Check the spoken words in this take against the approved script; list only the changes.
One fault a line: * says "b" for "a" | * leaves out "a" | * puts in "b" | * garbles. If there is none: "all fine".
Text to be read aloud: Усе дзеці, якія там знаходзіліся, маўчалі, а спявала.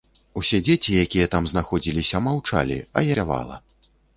all fine